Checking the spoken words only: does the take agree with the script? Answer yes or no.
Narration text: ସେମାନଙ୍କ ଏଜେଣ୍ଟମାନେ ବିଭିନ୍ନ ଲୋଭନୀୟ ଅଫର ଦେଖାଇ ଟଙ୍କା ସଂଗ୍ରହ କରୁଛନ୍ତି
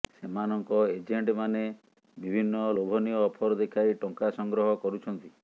yes